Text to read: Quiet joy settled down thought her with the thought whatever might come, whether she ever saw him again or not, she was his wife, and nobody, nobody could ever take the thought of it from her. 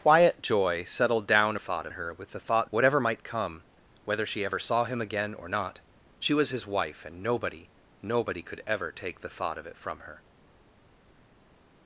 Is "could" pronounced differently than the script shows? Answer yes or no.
no